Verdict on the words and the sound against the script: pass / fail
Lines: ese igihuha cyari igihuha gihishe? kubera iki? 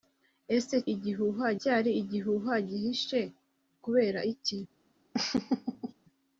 fail